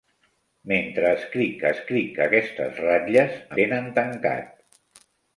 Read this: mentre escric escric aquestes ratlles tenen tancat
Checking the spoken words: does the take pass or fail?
pass